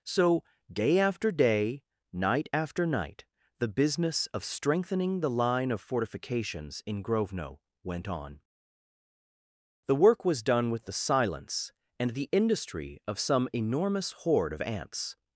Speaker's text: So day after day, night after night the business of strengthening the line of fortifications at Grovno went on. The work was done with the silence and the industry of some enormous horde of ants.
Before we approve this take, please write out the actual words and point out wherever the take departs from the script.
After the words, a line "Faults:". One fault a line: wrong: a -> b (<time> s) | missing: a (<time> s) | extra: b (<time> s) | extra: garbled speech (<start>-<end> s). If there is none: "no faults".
So day after day, night after night the business of strengthening the line of fortifications in Grovno went on. The work was done with the silence and the industry of some enormous horde of ants.
Faults:
wrong: at -> in (6.9 s)